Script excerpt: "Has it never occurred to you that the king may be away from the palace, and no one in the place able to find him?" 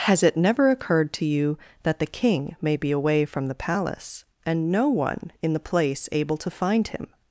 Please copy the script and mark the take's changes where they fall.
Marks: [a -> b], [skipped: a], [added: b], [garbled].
"Has it never occurred to you that the king may be away from the palace, and no one in the place able to find him?"